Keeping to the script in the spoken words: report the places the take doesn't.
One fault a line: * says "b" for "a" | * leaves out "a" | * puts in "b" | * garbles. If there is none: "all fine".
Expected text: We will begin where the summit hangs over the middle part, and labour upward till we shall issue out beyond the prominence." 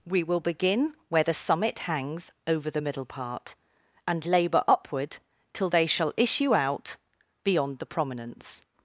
* says "they" for "we"